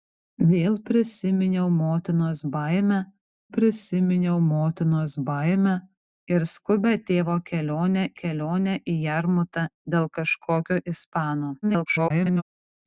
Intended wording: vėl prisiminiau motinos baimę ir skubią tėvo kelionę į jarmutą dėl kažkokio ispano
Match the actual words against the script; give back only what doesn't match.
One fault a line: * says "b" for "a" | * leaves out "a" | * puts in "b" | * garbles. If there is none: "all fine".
* puts in "prisiminiau motinos baimę"
* puts in "kelionę"
* garbles